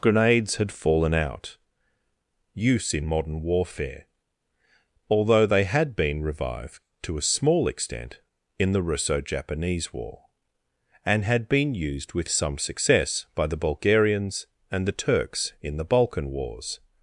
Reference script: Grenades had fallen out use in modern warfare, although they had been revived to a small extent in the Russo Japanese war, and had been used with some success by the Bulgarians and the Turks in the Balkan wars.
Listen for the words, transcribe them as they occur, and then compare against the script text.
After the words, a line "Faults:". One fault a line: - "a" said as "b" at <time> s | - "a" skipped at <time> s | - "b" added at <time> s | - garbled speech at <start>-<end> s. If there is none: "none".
Grenades had fallen out use in modern warfare, although they had been revived to a small extent in the Russo Japanese war, and had been used with some success by the Bulgarians and the Turks in the Balkan wars.
Faults:
none